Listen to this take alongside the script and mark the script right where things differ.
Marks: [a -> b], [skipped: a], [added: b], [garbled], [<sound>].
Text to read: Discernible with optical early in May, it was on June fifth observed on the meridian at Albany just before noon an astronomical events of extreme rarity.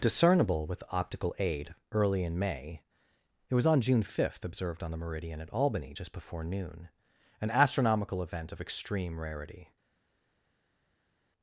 Discernible with optical [added: aid] early in May, it was on June fifth observed on the meridian at Albany just before noon an astronomical [events -> event] of extreme rarity.